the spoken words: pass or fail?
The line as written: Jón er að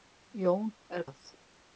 pass